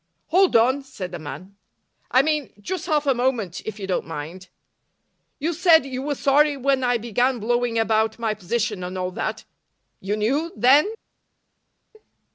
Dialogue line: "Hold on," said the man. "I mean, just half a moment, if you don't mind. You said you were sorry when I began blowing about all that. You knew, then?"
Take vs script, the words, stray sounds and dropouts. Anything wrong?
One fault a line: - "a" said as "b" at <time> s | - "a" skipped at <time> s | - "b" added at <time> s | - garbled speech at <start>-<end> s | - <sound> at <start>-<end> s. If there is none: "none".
- "my position and" added at 8.2 s